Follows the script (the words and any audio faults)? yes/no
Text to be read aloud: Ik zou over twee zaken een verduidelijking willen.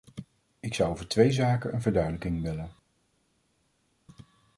yes